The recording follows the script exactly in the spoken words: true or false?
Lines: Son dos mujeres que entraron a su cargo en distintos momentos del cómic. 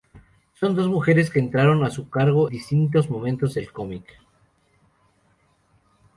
false